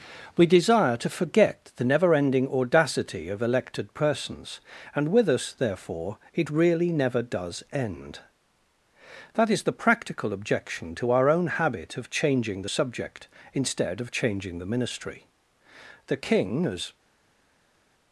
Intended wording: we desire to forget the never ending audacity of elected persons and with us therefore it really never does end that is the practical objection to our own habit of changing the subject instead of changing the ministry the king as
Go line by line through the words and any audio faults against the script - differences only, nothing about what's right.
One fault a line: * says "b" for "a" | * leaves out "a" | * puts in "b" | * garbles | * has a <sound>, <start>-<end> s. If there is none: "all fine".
all fine